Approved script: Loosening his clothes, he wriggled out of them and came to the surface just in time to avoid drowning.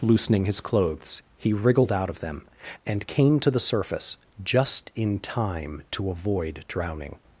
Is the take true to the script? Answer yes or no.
yes